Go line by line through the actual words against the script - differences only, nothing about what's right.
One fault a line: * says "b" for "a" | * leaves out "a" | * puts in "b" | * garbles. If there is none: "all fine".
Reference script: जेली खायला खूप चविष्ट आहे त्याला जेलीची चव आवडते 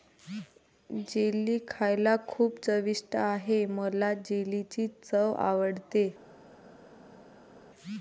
* says "मला" for "त्याला"